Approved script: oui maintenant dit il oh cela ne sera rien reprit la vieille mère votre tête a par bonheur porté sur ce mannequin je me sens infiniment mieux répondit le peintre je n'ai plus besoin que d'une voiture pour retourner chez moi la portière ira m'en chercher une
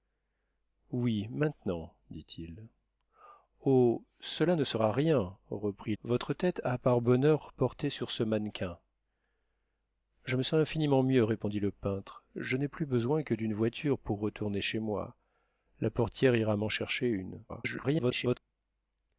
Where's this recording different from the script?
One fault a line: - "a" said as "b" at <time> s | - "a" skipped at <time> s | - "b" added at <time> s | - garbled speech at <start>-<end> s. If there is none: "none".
- "la vieille mère" skipped at 6.0 s
- garbled speech at 17.5-18.4 s